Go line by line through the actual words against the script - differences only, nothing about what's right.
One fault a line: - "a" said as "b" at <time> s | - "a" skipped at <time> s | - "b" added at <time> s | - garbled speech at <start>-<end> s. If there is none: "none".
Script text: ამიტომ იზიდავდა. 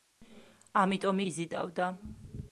none